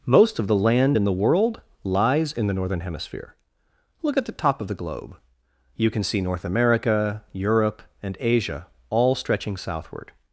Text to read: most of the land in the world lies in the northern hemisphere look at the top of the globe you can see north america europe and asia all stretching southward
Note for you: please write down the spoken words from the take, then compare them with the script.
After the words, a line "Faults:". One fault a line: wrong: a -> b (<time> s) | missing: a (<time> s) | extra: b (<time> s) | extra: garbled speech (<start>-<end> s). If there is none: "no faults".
most of the land in the world lies in the northern hemisphere look at the top of the globe you can see north america europe and asia all stretching southward
Faults:
no faults